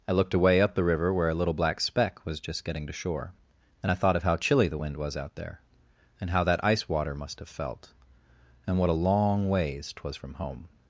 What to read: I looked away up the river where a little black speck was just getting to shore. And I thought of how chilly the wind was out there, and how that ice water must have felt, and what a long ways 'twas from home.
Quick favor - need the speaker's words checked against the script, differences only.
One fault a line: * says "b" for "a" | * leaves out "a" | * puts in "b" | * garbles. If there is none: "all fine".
all fine